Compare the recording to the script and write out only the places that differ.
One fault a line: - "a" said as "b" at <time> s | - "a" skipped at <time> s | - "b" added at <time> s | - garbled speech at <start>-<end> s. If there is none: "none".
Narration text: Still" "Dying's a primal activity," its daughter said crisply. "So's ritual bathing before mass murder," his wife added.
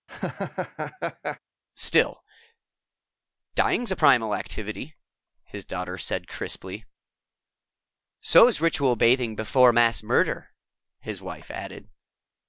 - "its" said as "his" at 5.4 s